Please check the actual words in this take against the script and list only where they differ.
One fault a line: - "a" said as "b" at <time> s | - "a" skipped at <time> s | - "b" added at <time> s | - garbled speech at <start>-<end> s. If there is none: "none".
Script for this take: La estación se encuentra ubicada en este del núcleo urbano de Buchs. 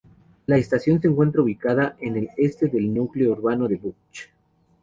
- "el" added at 2.2 s